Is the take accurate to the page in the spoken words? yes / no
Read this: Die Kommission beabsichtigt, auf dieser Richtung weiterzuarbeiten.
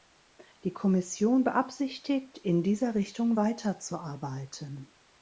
no